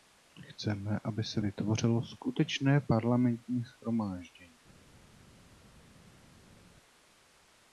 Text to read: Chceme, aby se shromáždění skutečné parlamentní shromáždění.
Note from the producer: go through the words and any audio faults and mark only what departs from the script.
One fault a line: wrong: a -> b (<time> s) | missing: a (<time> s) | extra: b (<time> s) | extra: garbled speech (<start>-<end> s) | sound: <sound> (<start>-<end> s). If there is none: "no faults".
wrong: shromáždění -> vytvořilo (1.4 s)